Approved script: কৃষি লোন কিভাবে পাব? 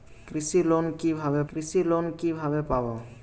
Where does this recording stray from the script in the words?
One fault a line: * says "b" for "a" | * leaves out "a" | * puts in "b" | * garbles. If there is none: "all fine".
* puts in "কৃষি লোন কিভাবে"